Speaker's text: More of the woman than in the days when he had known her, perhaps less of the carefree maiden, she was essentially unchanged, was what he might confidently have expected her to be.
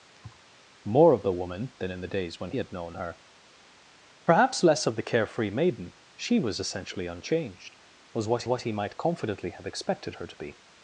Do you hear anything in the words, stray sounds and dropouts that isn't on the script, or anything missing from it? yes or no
yes